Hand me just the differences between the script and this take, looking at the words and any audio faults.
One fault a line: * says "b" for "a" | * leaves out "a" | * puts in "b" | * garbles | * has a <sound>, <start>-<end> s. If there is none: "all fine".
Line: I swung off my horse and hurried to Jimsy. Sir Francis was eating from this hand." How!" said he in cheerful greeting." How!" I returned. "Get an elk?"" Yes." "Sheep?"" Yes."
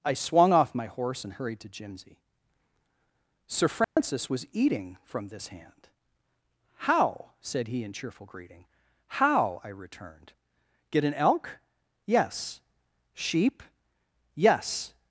* has a dropout, 3.8-4.0 s